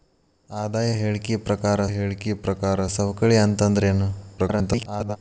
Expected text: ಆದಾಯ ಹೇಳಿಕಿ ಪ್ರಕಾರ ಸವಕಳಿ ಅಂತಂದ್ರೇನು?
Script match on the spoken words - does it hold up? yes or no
no